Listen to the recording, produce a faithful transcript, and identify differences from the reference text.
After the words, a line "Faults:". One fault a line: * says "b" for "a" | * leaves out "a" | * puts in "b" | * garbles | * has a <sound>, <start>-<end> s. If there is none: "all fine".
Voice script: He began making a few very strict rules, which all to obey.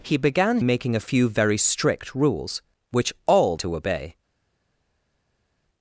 He began making a few very strict rules, which all to obey.
Faults:
all fine